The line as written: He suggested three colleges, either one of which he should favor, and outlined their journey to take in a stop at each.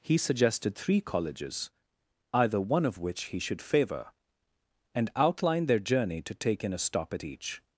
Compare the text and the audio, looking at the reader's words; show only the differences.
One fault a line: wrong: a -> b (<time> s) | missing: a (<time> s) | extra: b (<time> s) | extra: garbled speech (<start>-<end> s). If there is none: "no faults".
no faults